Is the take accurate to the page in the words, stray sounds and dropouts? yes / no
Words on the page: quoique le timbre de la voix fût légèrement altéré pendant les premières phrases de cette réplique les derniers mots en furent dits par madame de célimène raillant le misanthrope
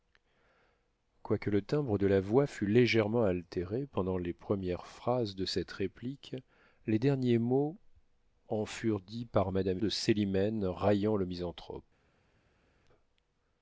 yes